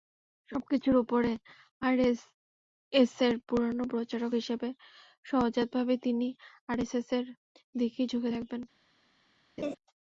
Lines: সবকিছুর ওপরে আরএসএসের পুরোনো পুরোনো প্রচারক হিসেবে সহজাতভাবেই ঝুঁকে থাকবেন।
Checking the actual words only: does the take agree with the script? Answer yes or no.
no